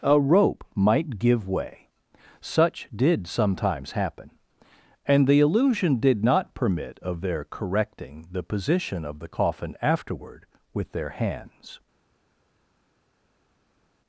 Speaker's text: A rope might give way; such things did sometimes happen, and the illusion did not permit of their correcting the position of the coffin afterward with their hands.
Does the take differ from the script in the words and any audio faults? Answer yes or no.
yes